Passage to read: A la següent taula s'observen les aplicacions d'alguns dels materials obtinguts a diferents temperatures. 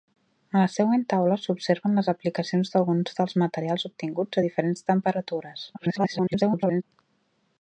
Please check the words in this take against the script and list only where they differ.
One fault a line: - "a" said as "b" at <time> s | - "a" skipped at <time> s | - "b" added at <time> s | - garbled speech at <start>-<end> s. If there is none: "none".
- garbled speech at 5.7-6.8 s